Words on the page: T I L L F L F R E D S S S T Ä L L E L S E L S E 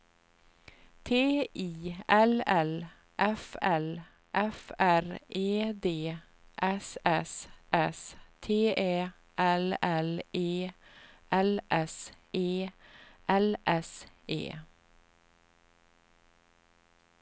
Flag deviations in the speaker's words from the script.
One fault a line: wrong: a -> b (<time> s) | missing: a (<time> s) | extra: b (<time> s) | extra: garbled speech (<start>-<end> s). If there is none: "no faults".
no faults